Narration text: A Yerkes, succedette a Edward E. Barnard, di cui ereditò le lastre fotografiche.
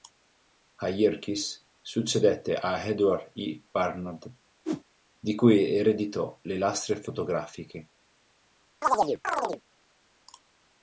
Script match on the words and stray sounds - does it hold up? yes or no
no